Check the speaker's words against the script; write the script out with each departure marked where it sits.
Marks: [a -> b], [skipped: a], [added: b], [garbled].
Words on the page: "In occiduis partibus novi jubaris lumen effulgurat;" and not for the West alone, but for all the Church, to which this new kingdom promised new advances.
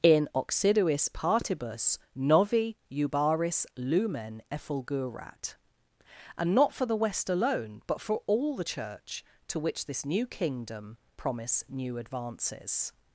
"In occiduis partibus novi jubaris lumen effulgurat;" and not for the West alone, but for all the Church, to which this new kingdom [promised -> promise] new advances.